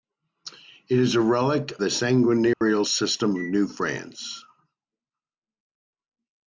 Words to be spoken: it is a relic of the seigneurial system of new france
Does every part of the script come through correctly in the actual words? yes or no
no